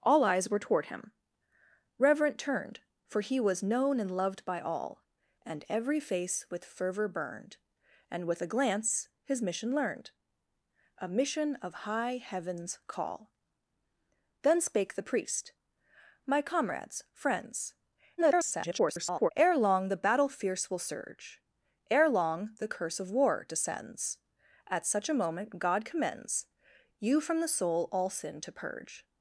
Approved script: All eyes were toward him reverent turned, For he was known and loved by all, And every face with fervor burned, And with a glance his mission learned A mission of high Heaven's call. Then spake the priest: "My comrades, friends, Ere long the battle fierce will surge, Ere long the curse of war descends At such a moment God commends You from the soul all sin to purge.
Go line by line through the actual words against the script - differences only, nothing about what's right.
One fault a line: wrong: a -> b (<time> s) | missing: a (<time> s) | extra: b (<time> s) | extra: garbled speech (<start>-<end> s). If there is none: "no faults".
extra: garbled speech (18.2-19.3 s)